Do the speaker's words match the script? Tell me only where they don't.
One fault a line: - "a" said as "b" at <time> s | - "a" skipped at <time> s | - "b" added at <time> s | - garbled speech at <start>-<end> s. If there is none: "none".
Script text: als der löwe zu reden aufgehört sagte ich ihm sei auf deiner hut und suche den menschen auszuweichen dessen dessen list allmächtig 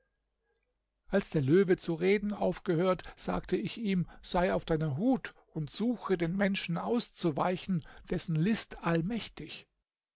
- "dessen" skipped at 8.3 s